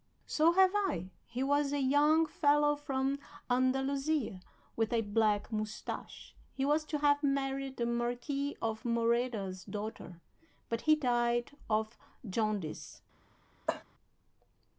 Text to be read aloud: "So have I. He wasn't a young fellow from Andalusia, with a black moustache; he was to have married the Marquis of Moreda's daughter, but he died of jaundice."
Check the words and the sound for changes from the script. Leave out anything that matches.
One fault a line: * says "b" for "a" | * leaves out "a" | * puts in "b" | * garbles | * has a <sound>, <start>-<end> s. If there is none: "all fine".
* says "was" for "wasn't"
* has a cough, 13.7-13.8 s